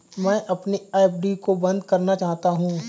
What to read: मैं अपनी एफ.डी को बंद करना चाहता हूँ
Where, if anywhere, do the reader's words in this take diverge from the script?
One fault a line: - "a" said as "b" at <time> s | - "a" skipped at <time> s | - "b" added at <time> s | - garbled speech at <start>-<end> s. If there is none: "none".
none